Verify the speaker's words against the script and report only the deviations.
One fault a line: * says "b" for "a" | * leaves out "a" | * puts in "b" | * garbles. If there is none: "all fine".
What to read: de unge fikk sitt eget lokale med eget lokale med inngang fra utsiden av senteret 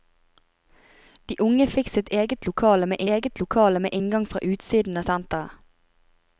all fine